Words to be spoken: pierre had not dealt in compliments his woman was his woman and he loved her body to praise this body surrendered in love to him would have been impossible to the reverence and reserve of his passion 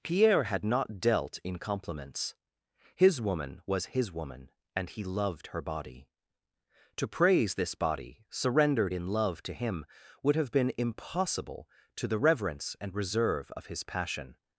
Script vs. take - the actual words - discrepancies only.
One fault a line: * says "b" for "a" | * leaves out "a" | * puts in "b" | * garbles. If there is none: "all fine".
all fine